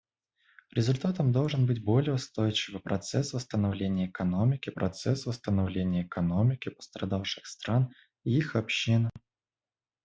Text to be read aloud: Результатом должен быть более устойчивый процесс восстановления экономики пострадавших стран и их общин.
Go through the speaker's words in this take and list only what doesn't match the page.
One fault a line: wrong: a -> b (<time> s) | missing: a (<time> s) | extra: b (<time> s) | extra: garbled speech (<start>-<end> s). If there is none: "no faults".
extra: процесс восстановления экономики (4.7 s)